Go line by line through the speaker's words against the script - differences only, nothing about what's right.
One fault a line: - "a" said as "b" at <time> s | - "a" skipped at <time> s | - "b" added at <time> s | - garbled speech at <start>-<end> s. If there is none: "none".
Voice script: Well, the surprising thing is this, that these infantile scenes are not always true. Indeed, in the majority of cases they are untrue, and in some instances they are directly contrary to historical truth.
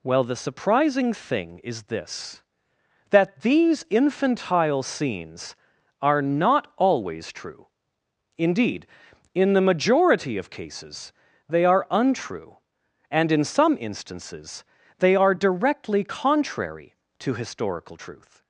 none